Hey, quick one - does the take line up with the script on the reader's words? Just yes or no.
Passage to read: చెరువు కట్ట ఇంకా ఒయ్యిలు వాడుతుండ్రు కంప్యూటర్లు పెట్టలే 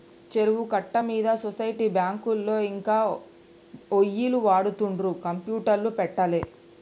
no